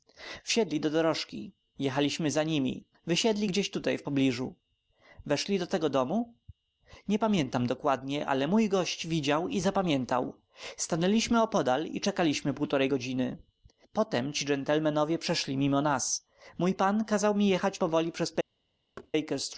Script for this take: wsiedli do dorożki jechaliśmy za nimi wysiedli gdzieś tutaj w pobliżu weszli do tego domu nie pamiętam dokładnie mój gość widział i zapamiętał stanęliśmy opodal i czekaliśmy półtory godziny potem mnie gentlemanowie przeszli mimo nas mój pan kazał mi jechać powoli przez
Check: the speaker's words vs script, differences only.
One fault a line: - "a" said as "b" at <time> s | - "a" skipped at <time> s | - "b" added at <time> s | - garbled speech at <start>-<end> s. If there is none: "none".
- "ale" added at 8.3 s
- "mnie" said as "ci" at 14.3 s